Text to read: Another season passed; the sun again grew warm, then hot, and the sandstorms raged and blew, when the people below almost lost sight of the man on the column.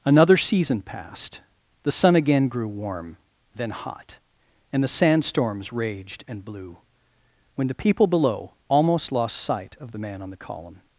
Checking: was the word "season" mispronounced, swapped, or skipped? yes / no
no